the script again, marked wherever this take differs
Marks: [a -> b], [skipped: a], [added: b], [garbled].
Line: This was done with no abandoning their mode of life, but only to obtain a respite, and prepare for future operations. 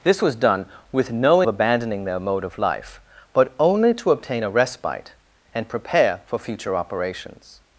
This was done with no abandoning their mode of life, but only to obtain a respite, and prepare for future operations.